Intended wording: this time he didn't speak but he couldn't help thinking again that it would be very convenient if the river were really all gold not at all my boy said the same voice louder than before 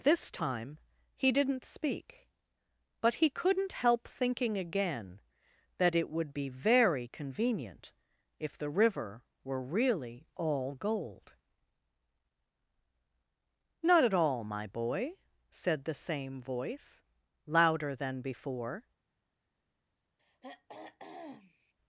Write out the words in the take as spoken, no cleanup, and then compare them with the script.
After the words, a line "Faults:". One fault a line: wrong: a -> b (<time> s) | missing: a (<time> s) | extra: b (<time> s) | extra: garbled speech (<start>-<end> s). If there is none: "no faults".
this time he didn't speak but he couldn't help thinking again that it would be very convenient if the river were really all gold not at all my boy said the same voice louder than before
Faults:
no faults